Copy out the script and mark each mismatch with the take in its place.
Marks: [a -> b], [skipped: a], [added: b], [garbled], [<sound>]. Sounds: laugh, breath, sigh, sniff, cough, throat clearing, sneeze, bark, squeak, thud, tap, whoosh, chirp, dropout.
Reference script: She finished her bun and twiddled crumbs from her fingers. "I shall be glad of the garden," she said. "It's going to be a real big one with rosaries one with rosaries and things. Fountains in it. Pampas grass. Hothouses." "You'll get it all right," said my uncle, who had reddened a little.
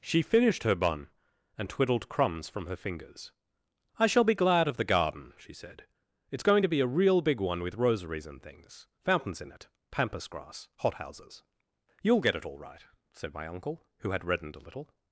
She finished her bun and twiddled crumbs from her fingers. "I shall be glad of the garden," she said. "It's going to be a real big one with rosaries [skipped: one with rosaries] and things. Fountains in it. Pampas grass. Hothouses." "You'll get it all right," said my uncle, who had reddened a little.